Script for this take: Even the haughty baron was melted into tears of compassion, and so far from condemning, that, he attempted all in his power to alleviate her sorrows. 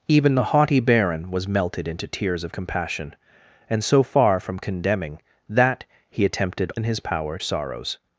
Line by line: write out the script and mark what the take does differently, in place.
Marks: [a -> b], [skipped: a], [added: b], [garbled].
Even the haughty baron was melted into tears of compassion, and so far from condemning, that, he attempted [skipped: all] in his power [skipped: to alleviate her] sorrows.